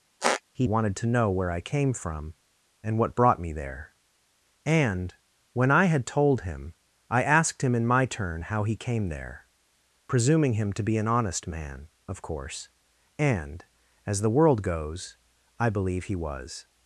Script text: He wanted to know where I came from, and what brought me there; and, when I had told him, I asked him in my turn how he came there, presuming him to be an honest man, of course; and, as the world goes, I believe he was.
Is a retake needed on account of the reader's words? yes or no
no